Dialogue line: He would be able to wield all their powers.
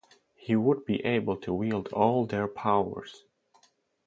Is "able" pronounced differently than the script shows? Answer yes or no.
no